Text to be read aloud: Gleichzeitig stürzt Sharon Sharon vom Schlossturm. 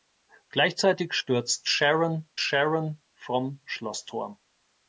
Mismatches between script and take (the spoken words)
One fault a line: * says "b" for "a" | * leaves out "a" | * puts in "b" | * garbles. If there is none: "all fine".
all fine